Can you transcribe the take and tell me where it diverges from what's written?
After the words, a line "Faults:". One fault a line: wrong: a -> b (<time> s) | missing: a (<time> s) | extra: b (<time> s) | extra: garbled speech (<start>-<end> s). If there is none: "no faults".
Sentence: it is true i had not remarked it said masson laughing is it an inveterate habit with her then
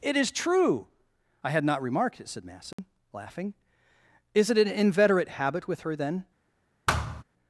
it is true i had not remarked it said masson laughing is it an inveterate habit with her then
Faults:
no faults